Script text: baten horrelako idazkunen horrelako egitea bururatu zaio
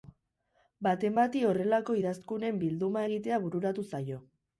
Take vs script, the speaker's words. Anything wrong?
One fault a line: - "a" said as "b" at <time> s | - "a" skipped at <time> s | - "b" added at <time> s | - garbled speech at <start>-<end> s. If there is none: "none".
- "bati" added at 1.2 s
- "horrelako" said as "bilduma" at 2.6 s